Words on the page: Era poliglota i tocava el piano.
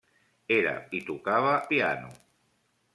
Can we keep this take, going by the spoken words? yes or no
no